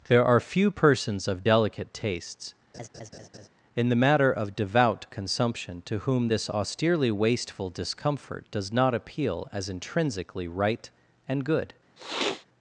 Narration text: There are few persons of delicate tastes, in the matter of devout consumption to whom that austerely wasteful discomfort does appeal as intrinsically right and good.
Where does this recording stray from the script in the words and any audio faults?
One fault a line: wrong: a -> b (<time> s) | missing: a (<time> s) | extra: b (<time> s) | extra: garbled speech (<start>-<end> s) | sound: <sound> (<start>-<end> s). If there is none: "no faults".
sound: laugh (2.7-3.5 s)
wrong: that -> this (6.3 s)
extra: not (8.7 s)
sound: sniff (12.0-12.4 s)